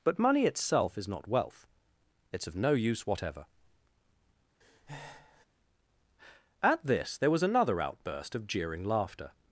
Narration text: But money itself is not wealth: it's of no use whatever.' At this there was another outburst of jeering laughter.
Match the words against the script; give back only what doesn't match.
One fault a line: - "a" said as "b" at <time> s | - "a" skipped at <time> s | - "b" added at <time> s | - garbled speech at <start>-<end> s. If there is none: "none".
none